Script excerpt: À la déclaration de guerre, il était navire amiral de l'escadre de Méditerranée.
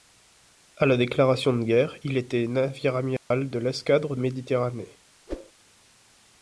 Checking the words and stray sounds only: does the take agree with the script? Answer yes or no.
no